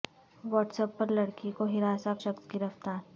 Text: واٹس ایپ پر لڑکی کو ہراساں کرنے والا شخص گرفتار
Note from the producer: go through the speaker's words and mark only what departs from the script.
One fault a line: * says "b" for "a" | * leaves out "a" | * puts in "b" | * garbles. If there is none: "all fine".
* leaves out "کرنے والا"